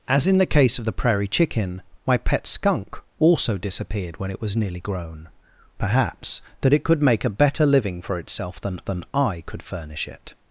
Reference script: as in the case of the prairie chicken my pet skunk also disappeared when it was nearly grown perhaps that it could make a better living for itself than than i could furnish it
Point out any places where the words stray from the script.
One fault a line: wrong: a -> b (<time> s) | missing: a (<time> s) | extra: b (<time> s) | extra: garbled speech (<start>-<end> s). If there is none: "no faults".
no faults